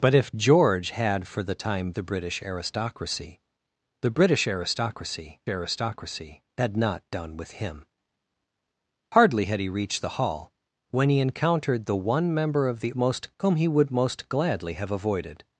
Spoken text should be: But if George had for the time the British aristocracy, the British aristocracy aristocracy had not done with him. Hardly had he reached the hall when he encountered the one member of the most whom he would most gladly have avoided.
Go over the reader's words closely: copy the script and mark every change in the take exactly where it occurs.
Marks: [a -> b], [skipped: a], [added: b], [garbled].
But if George had for the time the British aristocracy, the British aristocracy aristocracy had not done with him. Hardly had he reached the hall when he encountered the one member of the most whom he would most gladly have avoided.